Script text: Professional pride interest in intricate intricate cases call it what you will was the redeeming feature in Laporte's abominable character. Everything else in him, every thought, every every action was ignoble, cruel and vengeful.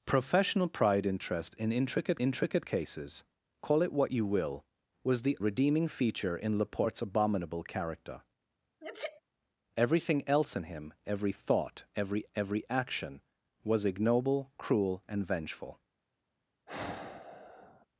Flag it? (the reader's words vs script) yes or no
no